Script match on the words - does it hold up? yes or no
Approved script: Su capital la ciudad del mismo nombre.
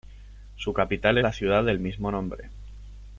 yes